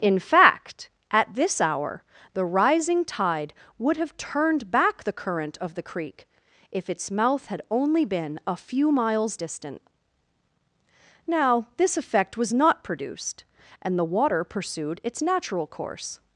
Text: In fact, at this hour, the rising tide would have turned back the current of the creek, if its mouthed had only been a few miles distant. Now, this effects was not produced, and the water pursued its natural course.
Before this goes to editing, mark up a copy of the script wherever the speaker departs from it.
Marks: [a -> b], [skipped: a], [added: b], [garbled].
In fact, at this hour, the rising tide would have turned back the current of the creek, if its [mouthed -> mouth] had only been a few miles distant. Now, this [effects -> effect] was not produced, and the water pursued its natural course.